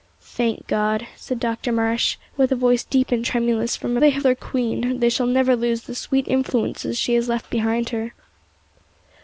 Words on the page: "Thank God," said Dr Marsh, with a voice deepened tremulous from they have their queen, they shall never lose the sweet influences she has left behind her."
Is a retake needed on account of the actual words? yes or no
no